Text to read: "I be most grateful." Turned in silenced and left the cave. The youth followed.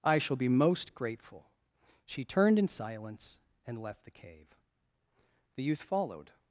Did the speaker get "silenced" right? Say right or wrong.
wrong